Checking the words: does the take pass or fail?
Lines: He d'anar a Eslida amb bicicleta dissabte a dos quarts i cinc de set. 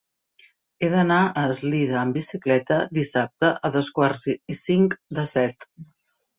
pass